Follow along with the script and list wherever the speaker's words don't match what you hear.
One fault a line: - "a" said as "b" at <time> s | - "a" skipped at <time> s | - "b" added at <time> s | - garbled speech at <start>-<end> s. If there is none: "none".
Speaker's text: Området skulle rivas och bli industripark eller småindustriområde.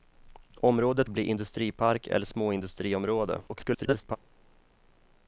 - "skulle rivas och" skipped at 1.1 s
- garbled speech at 3.4-4.2 s